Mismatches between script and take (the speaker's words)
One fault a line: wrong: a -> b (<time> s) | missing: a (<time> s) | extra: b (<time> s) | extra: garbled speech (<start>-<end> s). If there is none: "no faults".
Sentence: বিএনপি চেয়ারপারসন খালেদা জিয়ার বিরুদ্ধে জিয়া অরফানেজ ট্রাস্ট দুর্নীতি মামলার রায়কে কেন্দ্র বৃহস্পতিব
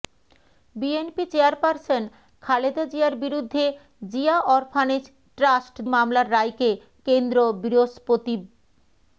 missing: দুর্নীতি (5.8 s)